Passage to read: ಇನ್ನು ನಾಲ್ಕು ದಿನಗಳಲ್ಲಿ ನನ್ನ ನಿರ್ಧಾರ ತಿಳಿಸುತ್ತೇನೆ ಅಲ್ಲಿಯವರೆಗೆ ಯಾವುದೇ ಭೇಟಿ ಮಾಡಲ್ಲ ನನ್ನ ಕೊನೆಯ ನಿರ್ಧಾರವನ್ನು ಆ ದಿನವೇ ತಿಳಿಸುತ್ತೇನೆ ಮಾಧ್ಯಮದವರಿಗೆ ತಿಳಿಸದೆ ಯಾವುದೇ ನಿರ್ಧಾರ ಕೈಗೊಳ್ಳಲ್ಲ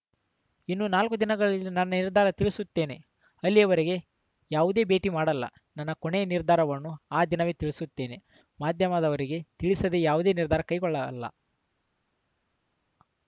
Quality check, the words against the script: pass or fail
pass